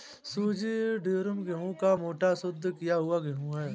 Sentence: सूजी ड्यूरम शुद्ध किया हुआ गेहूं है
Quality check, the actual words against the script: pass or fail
fail